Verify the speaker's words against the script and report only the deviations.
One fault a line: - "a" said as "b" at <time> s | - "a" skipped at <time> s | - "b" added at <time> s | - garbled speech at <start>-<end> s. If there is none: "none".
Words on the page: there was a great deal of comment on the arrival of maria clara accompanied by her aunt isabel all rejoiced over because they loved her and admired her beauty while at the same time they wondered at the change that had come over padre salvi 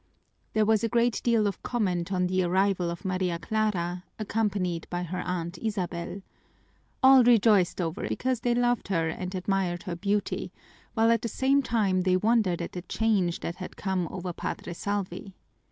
none